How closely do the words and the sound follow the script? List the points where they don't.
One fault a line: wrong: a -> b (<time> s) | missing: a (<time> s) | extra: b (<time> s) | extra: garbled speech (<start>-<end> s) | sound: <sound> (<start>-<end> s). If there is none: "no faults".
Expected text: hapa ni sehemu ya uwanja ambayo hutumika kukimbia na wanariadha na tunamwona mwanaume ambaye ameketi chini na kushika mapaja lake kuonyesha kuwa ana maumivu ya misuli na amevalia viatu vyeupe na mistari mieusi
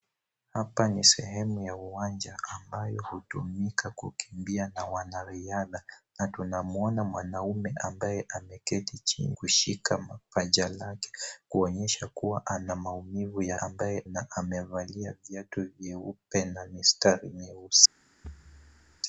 missing: na (9.4 s)
wrong: misuli -> ambaye (13.6 s)
sound: thud (18.2-19.0 s)